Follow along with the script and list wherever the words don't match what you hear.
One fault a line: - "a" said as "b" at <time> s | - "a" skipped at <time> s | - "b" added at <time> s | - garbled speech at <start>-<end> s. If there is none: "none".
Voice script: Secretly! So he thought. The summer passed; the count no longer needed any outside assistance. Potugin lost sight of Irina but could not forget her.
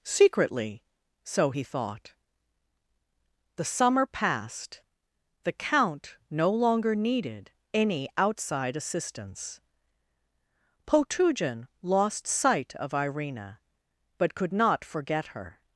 none